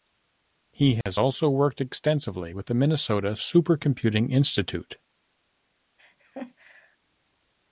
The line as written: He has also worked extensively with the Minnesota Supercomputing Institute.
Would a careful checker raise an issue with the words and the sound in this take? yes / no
yes